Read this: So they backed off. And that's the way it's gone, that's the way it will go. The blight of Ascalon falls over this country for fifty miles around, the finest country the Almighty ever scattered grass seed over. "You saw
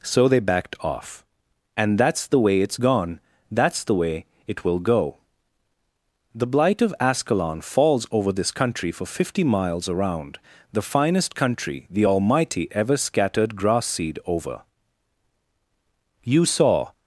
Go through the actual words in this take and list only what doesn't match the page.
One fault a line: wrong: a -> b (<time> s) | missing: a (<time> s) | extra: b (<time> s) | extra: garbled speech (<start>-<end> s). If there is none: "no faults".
no faults